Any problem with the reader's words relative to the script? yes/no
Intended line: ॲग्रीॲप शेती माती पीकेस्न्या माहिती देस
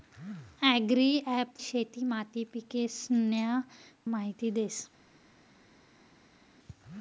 no